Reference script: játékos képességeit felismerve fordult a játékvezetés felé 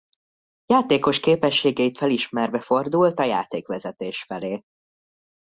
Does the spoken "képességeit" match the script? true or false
true